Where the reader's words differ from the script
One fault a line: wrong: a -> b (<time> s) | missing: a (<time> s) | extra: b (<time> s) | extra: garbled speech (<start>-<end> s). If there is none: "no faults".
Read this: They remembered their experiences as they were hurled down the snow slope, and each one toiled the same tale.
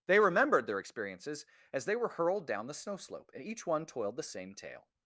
no faults